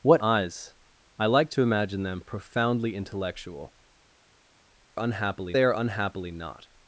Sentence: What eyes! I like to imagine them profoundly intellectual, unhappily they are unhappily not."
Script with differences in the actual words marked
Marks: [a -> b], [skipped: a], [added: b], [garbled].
What eyes! I like to imagine them profoundly intellectual, unhappily they are unhappily not."